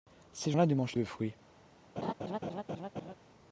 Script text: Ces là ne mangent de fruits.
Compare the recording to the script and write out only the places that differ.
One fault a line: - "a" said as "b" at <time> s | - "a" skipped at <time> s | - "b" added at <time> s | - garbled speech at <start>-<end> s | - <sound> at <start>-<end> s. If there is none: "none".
- laugh at 2.0-3.1 s